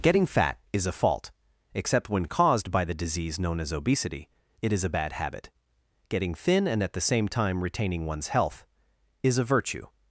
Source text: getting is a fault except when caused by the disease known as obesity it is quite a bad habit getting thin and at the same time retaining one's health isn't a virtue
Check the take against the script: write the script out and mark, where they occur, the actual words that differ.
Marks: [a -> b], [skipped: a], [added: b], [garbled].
getting [added: fat] is a fault except when caused by the disease known as obesity it is [skipped: quite] a bad habit getting thin and at the same time retaining one's health [isn't -> is] a virtue